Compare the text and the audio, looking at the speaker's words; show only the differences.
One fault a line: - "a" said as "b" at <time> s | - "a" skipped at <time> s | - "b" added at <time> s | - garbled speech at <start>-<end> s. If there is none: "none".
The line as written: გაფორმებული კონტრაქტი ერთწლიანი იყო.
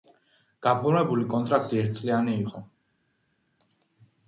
none